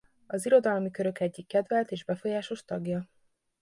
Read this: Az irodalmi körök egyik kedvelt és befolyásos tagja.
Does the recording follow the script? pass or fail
pass